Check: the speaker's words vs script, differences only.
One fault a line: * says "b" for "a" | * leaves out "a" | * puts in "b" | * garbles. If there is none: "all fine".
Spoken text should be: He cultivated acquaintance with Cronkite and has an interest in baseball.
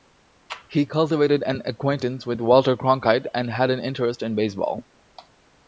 * puts in "an"
* puts in "Walter"
* says "had" for "has"